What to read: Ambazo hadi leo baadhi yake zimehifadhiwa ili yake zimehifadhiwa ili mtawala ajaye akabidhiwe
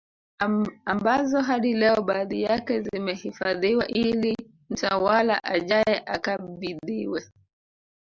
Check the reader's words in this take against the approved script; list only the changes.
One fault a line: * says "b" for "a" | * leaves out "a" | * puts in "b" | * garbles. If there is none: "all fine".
* leaves out "yake zimehifadhiwa ili"